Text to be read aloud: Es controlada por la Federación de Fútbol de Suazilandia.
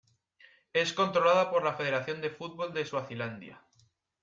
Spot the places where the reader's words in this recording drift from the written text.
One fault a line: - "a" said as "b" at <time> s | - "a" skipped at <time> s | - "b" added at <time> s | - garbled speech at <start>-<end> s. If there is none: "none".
none